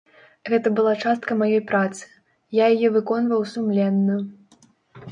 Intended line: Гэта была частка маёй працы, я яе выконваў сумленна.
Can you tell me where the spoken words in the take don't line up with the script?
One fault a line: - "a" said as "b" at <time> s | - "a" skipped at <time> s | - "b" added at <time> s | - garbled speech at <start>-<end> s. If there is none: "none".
none